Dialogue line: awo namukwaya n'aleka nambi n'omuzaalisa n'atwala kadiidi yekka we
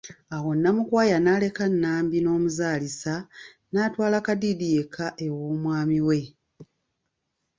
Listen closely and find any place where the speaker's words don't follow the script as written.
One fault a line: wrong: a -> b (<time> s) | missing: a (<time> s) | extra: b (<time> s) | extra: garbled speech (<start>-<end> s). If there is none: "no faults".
extra: ew'omwami (5.2 s)